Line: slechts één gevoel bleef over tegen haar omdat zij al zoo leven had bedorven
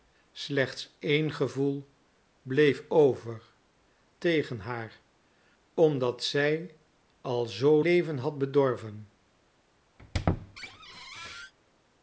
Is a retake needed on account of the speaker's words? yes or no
no